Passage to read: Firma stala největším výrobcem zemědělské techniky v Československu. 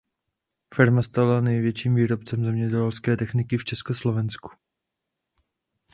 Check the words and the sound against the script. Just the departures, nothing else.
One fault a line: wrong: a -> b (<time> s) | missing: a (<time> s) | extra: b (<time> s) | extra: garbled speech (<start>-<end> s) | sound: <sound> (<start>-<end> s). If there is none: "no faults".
no faults